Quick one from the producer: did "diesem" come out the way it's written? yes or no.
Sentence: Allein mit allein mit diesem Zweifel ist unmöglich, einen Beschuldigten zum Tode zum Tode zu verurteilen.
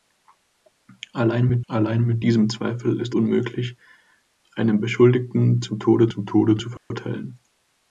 yes